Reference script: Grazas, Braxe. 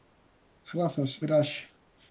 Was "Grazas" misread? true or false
false